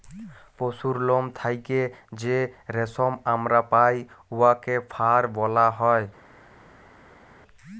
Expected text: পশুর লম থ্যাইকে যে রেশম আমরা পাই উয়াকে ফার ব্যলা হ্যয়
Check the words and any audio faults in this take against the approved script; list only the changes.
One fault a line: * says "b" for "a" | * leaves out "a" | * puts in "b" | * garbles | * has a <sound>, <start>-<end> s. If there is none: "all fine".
all fine